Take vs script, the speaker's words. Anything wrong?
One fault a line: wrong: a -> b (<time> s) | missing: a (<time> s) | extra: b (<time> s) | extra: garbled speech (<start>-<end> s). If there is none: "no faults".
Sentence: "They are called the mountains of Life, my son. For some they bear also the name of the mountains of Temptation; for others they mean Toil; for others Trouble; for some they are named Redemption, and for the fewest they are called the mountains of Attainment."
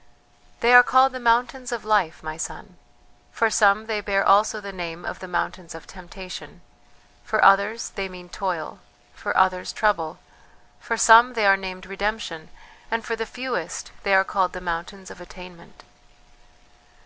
no faults